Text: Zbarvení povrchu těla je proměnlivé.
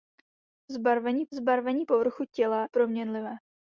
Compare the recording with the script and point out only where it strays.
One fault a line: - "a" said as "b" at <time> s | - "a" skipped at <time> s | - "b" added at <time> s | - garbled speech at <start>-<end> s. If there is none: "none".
- "zbarvení" added at 1.3 s
- "je" skipped at 2.7 s